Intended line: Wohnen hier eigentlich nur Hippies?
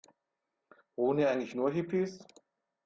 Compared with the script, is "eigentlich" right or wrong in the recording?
right